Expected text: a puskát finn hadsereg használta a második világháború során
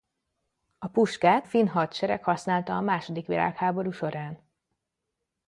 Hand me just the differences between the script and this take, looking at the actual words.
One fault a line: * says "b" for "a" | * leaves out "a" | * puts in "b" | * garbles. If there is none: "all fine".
all fine